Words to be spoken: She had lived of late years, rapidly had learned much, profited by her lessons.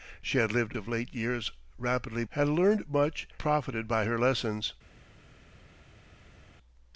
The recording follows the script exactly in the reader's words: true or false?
true